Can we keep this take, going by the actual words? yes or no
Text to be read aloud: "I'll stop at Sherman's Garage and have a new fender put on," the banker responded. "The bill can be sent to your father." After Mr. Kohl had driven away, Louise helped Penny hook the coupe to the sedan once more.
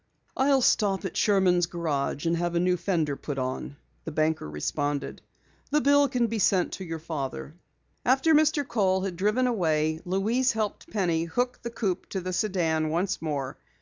yes